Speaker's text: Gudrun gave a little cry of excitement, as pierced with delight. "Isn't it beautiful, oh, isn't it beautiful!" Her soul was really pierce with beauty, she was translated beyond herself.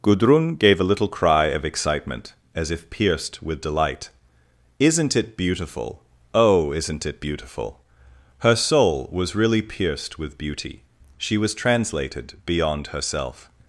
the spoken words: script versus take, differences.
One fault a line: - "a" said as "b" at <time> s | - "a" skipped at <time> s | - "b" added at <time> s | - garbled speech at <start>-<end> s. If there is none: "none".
- "if" added at 2.7 s
- "pierce" said as "pierced" at 9.6 s